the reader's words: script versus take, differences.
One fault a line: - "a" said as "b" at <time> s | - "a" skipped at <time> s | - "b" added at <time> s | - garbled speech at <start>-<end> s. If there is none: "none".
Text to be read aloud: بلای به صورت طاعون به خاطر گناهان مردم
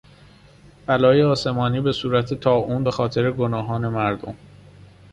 - "آسمانی" added at 1.2 s